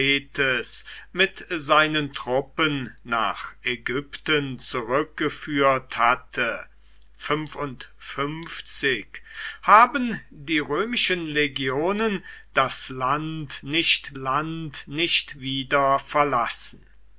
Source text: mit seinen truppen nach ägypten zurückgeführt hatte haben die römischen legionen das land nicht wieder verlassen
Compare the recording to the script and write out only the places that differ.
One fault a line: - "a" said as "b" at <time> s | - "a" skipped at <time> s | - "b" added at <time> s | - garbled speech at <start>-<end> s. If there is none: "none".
- "land nicht" added at 14.1 s